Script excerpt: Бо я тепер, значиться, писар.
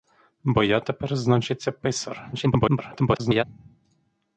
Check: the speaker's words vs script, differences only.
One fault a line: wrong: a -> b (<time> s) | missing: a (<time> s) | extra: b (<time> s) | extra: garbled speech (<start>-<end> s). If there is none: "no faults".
extra: garbled speech (2.3-3.4 s)